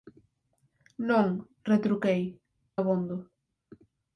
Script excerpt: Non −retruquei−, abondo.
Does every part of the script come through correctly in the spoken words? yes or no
yes